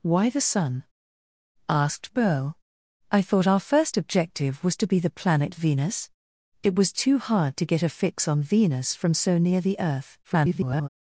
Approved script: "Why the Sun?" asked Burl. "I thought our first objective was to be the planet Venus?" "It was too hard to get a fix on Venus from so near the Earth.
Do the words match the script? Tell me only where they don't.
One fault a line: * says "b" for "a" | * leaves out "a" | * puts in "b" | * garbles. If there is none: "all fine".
* garbles